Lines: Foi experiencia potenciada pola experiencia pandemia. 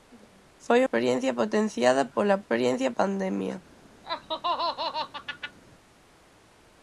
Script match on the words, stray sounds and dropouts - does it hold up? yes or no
no